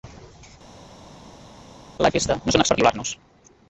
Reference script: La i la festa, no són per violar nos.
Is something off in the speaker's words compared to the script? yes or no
no